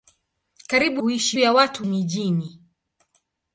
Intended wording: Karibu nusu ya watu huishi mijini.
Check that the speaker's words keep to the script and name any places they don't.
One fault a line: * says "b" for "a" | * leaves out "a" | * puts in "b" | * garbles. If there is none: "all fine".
* says "huishi" for "nusu"
* leaves out "huishi"